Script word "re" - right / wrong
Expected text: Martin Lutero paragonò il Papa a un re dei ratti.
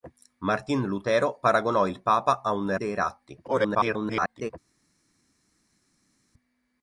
wrong